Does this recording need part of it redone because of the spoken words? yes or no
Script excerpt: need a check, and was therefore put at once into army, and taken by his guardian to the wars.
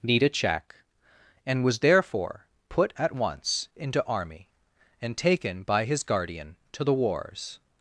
no